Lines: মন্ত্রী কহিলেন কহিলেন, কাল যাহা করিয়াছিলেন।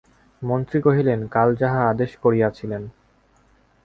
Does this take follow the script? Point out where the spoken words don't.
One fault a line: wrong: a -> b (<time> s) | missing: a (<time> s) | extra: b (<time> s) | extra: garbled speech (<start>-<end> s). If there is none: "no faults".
missing: কহিলেন (1.2 s)
extra: আদেশ (1.9 s)